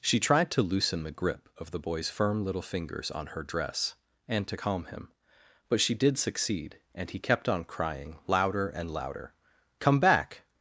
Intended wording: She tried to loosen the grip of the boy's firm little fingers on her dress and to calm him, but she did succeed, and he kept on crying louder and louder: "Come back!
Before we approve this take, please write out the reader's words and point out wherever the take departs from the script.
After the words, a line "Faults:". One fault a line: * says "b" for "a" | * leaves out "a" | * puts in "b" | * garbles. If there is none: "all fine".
She tried to loosen the grip of the boy's firm little fingers on her dress and to calm him, but she did succeed, and he kept on crying louder and louder: "Come back!
Faults:
all fine